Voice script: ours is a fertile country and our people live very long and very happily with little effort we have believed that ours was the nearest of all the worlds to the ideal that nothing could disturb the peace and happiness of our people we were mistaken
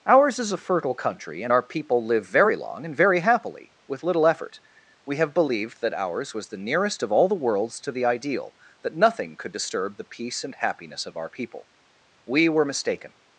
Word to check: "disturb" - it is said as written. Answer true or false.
true